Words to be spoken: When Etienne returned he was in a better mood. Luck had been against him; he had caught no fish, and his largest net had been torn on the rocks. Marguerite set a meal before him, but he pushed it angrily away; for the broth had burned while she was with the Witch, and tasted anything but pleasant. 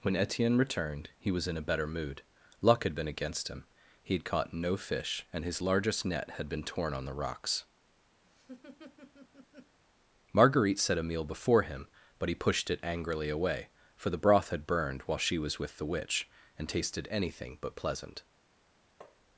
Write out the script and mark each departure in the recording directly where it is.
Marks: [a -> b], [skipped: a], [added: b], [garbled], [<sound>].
When Etienne returned he was in a better mood. Luck had been against him; he had caught no fish, and his largest net had been torn on the rocks. [laugh] Marguerite set a meal before him, but he pushed it angrily away; for the broth had burned while she was with the Witch, and tasted anything but pleasant. [tap]